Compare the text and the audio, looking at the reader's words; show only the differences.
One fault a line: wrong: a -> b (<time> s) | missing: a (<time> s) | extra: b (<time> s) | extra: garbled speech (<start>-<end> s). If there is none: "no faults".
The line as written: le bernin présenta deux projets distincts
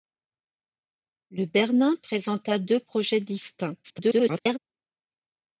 extra: garbled speech (3.8-4.6 s)